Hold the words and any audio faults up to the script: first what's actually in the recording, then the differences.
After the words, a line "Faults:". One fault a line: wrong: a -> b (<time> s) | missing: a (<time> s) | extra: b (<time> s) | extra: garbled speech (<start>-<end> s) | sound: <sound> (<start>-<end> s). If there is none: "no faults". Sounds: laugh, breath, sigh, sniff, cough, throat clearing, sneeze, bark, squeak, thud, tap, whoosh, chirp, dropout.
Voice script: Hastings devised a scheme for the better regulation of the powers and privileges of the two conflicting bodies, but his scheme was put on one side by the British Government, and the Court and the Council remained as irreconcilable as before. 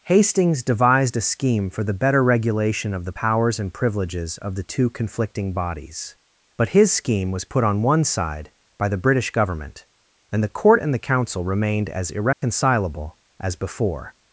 Hastings devised a scheme for the better regulation of the powers and privileges of the two conflicting bodies, but his scheme was put on one side by the British Government, and the Court and the Council remained as irreconcilable as before.
Faults:
sound: dropout (12.3-12.4 s)